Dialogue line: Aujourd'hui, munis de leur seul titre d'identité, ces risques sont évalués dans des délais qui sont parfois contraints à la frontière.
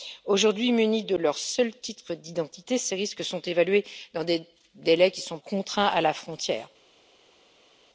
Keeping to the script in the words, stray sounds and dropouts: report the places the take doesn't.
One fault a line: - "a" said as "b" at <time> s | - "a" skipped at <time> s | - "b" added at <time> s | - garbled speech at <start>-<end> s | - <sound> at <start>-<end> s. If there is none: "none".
- "parfois" skipped at 5.4 s